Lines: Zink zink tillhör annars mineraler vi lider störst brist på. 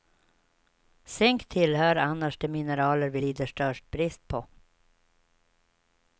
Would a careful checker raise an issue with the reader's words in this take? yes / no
yes